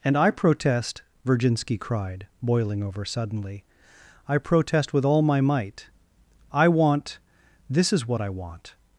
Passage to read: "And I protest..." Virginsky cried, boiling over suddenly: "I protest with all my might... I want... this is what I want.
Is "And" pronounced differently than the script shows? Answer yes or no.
no